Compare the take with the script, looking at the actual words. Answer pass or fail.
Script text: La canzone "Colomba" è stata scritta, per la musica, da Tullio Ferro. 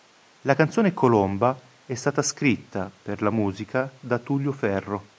pass